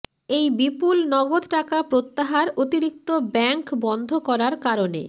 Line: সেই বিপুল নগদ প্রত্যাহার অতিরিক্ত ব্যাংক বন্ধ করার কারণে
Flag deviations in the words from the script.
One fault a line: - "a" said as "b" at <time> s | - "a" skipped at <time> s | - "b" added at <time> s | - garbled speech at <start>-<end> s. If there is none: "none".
- "সেই" said as "এই" at 0.3 s
- "টাকা" added at 1.5 s